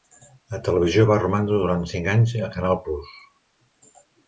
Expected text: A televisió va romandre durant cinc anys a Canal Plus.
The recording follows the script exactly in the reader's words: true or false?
true